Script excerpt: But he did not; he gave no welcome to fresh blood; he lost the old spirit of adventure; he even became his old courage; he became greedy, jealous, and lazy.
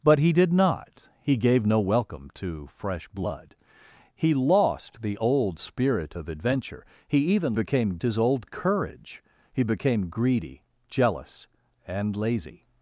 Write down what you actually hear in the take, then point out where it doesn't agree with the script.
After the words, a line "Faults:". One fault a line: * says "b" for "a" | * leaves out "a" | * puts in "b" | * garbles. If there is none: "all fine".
But he did not; he gave no welcome to fresh blood; he lost the old spirit of adventure; he even became his old courage; he became greedy, jealous, and lazy.
Faults:
all fine